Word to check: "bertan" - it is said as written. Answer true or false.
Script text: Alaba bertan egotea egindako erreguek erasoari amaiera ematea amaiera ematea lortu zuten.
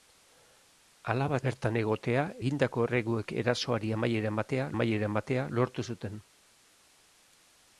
true